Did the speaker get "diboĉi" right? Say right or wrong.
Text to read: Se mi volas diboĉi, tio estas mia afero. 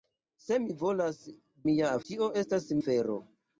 wrong